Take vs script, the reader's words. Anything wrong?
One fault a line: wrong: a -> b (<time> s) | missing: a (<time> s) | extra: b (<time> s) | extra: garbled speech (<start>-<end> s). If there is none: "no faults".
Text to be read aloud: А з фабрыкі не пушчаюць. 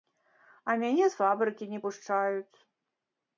extra: мяне (0.8 s)